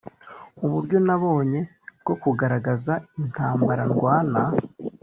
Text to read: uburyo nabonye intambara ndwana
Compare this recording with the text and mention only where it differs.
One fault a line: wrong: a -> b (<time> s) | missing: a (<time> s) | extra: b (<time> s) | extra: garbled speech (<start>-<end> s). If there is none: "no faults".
extra: bwo kugaragaza (2.0 s)